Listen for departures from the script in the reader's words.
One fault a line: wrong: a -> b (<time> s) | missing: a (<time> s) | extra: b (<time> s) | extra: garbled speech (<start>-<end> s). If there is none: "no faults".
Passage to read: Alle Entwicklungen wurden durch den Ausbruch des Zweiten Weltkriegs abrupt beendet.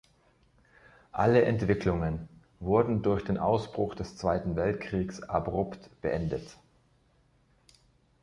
no faults